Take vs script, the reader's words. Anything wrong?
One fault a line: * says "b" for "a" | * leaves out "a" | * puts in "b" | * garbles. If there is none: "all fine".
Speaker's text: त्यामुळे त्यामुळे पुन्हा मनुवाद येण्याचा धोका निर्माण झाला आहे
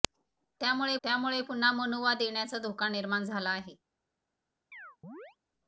all fine